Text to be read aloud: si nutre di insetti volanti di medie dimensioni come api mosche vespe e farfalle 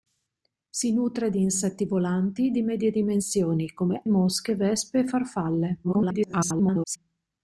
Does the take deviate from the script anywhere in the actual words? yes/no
yes